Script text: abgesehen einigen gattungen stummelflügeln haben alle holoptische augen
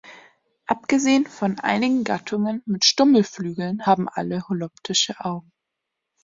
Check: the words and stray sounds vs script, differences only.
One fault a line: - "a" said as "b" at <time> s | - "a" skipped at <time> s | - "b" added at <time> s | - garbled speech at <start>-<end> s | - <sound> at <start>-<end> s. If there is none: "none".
- "von" added at 1.3 s
- "mit" added at 2.6 s